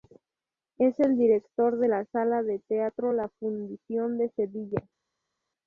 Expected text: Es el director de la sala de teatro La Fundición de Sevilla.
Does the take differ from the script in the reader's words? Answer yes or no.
no